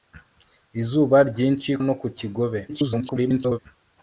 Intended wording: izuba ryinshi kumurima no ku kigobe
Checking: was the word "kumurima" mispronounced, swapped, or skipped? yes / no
yes